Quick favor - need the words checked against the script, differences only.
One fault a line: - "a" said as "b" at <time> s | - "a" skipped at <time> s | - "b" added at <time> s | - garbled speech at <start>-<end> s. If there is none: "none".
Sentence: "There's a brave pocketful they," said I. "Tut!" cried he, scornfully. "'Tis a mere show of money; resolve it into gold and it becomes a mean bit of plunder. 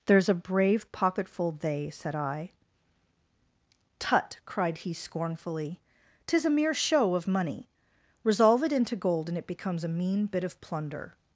none